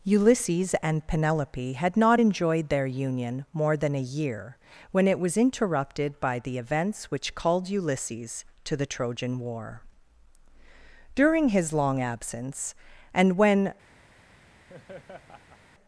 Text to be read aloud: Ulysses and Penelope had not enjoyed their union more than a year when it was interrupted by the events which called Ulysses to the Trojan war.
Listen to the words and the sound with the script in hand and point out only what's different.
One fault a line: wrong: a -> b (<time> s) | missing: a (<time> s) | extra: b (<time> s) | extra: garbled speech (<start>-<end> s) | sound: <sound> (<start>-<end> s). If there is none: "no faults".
extra: During his long absence and when (11.2 s)
sound: laugh (14.7-15.6 s)